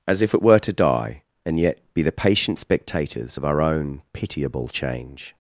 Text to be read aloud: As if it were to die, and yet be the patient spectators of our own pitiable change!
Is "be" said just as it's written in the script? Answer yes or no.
yes